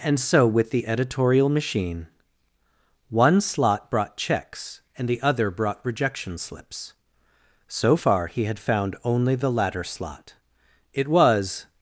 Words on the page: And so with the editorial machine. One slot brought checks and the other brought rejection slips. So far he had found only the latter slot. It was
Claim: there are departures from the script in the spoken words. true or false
false